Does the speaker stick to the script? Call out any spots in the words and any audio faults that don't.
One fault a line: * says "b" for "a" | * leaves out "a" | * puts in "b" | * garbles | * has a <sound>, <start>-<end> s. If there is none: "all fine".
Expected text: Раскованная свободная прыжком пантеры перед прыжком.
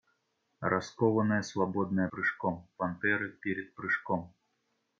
all fine